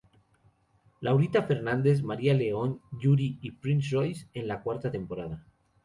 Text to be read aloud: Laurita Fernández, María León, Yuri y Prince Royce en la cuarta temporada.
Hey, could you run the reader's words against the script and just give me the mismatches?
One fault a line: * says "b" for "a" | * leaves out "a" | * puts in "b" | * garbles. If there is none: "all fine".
all fine